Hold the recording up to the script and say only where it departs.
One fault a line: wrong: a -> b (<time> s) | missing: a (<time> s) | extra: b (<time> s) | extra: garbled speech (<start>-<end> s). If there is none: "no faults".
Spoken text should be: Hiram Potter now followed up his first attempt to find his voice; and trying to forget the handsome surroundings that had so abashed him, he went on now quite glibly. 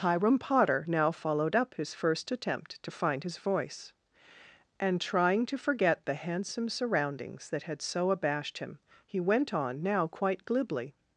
no faults